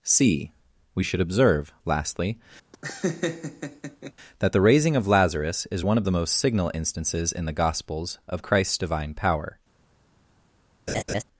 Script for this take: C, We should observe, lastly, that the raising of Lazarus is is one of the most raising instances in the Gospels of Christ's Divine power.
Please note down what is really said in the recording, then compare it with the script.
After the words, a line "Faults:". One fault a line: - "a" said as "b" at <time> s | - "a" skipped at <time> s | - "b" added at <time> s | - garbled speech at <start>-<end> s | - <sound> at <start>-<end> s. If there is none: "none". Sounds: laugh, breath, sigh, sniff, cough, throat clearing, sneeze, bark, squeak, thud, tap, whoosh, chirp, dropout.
C, We should observe, lastly, that the raising of Lazarus is one of the most signal instances in the Gospels of Christ's Divine power.
Faults:
- laugh at 2.7-4.1 s
- "is" skipped at 5.8 s
- "raising" said as "signal" at 6.4 s
- laugh at 10.9-11.2 s